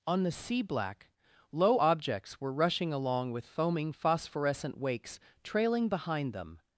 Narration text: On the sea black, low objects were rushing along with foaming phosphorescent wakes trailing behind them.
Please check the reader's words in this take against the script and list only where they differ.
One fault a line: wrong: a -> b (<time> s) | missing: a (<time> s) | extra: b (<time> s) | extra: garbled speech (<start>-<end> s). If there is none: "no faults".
no faults